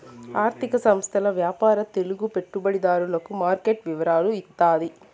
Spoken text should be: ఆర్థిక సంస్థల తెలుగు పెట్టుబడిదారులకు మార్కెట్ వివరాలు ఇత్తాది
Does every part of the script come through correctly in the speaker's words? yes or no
no